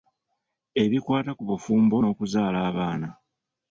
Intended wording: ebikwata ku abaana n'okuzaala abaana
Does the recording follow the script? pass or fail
fail